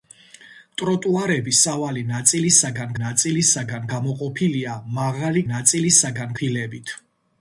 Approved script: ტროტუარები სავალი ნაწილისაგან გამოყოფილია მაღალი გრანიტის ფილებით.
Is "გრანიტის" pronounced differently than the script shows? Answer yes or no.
yes